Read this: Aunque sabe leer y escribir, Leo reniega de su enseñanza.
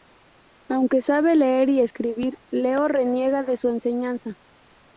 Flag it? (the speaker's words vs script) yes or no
no